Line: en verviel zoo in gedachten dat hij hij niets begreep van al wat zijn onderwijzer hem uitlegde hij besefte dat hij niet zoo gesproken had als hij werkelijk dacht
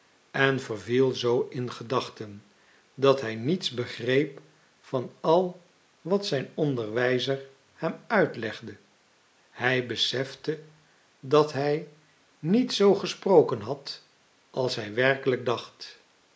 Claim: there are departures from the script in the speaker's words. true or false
true